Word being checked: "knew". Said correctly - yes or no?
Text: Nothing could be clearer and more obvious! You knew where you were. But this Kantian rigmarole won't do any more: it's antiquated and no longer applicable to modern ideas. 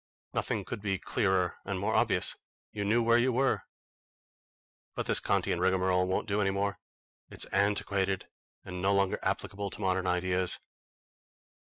yes